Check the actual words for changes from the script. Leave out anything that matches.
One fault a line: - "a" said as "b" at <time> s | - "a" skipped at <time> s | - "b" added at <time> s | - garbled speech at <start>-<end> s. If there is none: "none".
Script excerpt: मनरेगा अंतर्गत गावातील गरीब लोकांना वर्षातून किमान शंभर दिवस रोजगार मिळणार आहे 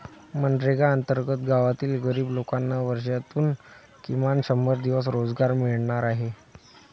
none